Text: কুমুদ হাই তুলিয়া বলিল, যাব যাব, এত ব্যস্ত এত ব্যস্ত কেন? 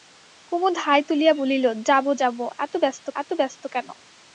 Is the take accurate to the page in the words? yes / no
yes